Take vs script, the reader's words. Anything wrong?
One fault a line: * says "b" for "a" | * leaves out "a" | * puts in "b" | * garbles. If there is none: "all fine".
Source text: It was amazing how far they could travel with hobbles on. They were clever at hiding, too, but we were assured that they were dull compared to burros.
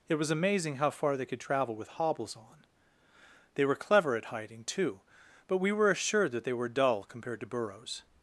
all fine